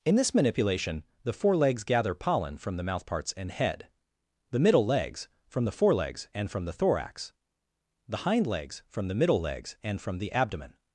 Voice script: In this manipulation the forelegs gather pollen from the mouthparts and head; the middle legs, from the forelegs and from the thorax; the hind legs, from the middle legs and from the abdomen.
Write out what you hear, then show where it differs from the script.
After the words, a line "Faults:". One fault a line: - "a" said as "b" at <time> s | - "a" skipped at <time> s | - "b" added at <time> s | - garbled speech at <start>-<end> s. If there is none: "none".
In this manipulation the forelegs gather pollen from the mouthparts and head; the middle legs, from the forelegs and from the thorax; the hind legs, from the middle legs and from the abdomen.
Faults:
none